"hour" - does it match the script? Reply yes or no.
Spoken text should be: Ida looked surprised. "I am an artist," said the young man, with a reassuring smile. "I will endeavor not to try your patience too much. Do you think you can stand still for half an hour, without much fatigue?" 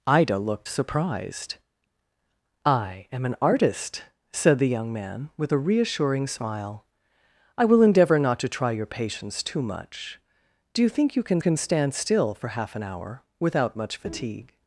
yes